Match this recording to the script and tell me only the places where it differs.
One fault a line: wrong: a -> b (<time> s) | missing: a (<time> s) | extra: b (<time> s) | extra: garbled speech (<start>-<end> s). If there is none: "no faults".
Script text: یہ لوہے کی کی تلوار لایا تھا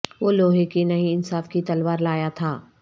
wrong: یہ -> وہ (0.2 s)
extra: نہیں انصاف (0.8 s)